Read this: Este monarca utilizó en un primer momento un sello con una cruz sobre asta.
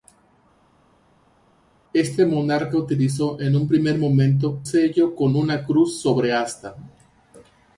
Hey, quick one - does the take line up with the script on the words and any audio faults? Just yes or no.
no